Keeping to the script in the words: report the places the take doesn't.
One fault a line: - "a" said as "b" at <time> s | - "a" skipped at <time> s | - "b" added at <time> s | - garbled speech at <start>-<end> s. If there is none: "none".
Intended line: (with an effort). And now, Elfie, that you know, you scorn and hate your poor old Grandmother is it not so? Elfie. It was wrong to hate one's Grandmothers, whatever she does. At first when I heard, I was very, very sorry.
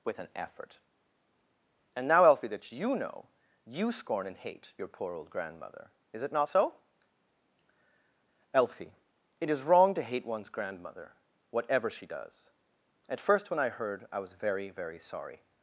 - "was" said as "is" at 9.5 s
- "Grandmothers" said as "Grandmother" at 10.5 s